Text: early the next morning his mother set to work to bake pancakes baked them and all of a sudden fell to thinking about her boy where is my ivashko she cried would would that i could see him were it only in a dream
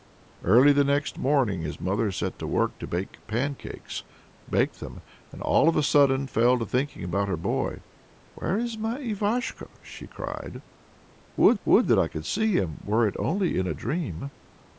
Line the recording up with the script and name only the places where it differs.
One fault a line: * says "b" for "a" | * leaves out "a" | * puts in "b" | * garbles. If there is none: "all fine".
all fine